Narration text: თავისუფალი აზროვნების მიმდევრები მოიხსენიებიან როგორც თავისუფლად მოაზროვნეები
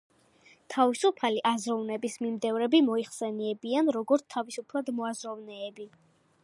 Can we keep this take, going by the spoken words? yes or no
yes